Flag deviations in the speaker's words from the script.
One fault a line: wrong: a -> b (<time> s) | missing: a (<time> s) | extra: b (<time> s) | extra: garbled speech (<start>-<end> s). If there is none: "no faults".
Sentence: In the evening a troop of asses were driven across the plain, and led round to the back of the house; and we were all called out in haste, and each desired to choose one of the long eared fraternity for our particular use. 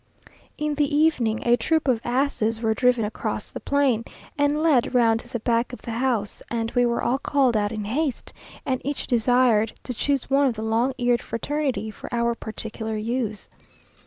no faults